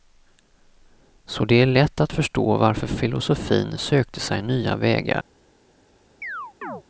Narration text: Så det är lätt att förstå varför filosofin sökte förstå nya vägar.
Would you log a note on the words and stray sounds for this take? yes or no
yes